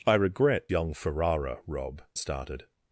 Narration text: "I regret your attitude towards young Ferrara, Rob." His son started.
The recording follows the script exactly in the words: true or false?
false